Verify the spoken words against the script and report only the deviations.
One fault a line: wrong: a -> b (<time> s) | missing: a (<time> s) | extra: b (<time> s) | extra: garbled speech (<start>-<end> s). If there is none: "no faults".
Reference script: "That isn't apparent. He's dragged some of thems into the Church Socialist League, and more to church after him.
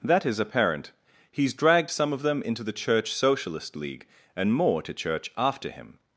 wrong: isn't -> is (0.2 s)
wrong: thems -> them (2.2 s)